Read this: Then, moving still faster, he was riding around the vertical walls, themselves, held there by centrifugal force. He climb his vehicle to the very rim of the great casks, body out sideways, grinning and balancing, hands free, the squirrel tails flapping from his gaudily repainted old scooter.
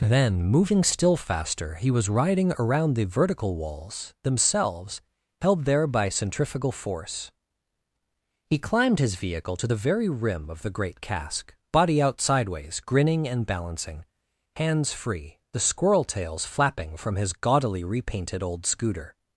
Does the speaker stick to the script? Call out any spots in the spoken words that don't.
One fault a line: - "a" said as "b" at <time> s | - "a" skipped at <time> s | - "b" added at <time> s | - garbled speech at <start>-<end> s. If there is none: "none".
- "climb" said as "climbed" at 8.6 s
- "casks" said as "cask" at 11.0 s